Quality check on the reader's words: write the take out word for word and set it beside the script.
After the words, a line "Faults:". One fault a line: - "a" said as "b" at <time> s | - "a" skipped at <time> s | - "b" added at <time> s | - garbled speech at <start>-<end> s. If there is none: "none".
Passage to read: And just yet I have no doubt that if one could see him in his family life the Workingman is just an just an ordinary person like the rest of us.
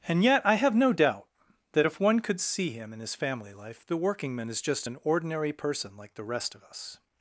And yet I have no doubt that if one could see him in his family life the Workingman is just an ordinary person like the rest of us.
Faults:
- "just" skipped at 0.2 s
- "just an" skipped at 5.0 s